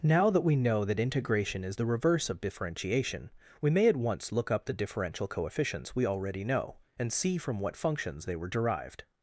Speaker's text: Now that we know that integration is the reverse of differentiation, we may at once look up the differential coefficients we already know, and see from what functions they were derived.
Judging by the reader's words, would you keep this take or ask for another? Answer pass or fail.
pass